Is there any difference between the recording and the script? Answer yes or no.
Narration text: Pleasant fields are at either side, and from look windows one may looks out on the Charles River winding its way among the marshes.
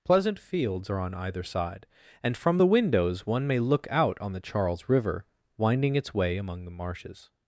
yes